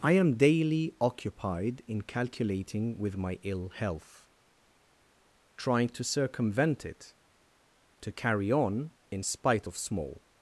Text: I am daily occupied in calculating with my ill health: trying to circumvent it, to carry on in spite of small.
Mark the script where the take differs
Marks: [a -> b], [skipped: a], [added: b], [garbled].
I am daily occupied in calculating with my ill health: trying to circumvent it, to carry on in spite of small.